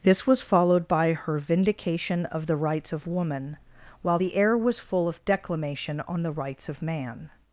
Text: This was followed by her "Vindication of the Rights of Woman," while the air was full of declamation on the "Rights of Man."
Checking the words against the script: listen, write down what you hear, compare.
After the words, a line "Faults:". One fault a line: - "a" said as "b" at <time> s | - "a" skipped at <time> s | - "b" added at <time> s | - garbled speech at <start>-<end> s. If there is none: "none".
This was followed by her "Vindication of the Rights of Woman," while the air was full of declamation on the "Rights of Man."
Faults:
none